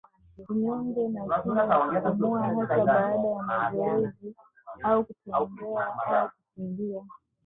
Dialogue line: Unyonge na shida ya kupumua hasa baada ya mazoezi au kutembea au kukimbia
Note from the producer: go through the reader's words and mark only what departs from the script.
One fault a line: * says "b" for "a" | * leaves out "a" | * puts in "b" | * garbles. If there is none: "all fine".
all fine